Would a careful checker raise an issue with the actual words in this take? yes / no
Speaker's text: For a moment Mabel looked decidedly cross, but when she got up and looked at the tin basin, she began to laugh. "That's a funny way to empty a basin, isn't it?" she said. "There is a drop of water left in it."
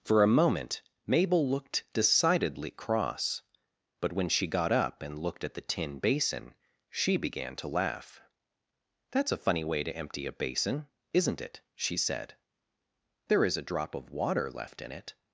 no